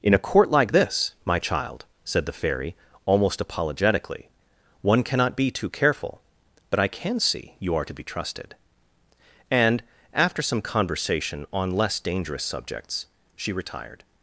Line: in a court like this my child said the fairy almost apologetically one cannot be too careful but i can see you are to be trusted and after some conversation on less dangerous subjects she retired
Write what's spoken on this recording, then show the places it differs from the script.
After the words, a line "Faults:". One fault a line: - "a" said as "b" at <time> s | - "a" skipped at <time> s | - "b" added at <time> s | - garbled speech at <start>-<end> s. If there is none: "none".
in a court like this my child said the fairy almost apologetically one cannot be too careful but i can see you are to be trusted and after some conversation on less dangerous subjects she retired
Faults:
none